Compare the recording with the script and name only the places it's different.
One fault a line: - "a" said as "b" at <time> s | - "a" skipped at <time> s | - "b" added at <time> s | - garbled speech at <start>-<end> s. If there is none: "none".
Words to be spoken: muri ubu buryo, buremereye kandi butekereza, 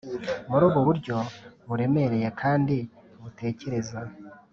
none